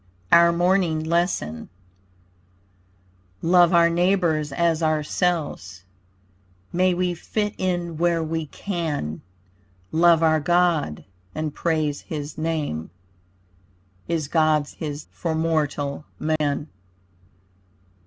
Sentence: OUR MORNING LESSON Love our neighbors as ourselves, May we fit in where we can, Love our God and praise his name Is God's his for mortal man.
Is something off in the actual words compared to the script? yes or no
no